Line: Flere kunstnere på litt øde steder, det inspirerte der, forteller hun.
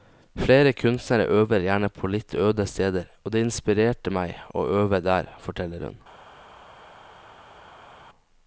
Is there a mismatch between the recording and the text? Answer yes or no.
yes